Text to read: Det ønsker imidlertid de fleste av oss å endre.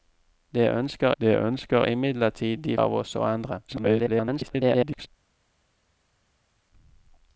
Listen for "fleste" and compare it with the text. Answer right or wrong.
wrong